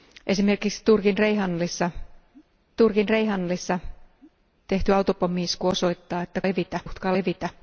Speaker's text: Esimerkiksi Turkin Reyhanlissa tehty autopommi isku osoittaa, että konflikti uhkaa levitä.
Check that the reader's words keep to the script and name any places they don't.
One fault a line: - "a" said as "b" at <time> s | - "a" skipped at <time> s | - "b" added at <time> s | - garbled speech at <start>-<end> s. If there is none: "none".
- "Turkin Reyhanlissa" added at 2.8 s
- "konflikti" said as "levitä" at 6.4 s